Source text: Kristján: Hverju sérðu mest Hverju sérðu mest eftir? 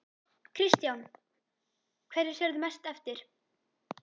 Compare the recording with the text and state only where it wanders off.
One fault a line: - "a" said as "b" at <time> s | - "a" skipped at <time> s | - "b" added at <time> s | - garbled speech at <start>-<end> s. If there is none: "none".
- "Hverju sérðu mest" skipped at 2.9 s